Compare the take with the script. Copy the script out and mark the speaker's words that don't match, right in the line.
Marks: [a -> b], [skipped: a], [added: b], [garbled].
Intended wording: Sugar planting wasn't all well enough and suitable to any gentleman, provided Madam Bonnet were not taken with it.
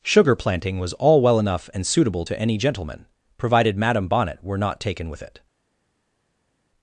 Sugar planting [wasn't -> was] all well enough and suitable to any gentleman, provided Madam Bonnet were not taken with it.